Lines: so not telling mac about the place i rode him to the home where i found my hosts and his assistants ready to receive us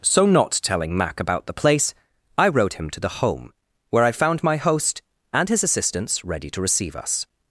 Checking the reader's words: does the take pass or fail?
fail